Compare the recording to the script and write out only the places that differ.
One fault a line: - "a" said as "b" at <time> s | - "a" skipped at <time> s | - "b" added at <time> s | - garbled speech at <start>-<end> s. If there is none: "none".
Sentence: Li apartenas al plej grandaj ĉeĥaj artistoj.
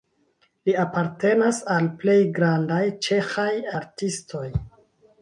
none